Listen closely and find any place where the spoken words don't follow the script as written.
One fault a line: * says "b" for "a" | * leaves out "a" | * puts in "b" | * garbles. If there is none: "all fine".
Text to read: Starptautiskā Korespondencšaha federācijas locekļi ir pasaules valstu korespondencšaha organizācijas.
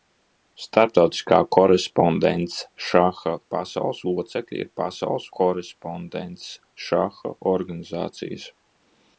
* says "pasaules" for "federācijas"
* leaves out "valstu"